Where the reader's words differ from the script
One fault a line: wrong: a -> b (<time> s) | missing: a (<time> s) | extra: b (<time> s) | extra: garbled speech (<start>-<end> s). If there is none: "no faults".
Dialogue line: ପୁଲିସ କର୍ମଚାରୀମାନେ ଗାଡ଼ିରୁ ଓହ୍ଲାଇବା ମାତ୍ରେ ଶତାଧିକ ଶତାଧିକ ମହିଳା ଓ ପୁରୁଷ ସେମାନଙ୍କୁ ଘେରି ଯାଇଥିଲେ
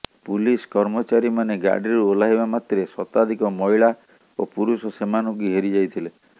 missing: ଶତାଧିକ (3.5 s)